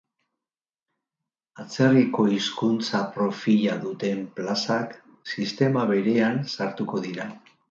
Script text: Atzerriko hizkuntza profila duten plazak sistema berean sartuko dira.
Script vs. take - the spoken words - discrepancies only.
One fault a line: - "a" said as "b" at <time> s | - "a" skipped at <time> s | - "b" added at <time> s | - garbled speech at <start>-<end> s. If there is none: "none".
none